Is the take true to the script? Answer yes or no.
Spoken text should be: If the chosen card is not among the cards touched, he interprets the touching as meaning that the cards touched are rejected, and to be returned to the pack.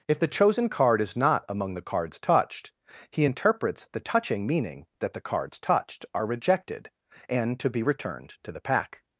no